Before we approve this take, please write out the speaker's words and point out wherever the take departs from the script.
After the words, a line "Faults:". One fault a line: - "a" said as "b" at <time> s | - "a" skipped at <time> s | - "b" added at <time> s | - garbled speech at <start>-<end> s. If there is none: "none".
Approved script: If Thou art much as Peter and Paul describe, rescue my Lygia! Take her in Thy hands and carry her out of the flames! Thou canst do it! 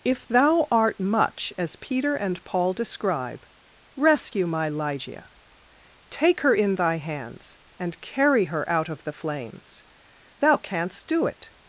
If Thou art much as Peter and Paul describe, rescue my Lygia! Take her in Thy hands and carry her out of the flames! Thou canst do it!
Faults:
none